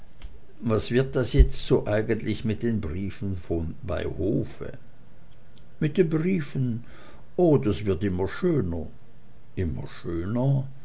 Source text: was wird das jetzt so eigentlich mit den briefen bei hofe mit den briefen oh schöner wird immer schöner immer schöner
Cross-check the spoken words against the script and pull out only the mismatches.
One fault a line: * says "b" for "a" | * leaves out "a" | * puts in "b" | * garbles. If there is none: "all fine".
* says "das" for "schöner"